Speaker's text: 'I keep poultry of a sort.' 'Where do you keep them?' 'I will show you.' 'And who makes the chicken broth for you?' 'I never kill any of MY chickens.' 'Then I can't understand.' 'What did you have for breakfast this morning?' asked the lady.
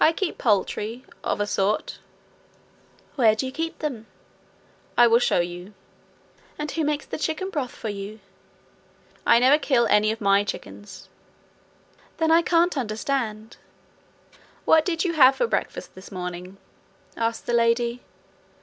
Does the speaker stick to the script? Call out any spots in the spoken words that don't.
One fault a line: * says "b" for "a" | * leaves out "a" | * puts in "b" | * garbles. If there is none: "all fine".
all fine